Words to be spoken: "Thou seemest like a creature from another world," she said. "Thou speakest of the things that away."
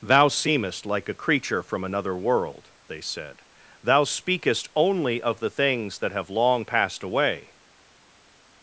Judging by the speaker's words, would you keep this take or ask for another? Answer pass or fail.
fail